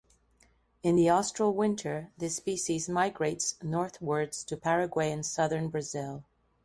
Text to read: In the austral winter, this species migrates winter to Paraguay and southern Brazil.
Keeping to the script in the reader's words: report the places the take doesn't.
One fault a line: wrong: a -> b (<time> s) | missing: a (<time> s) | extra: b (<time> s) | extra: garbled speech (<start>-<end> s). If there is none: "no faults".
wrong: winter -> northwards (3.6 s)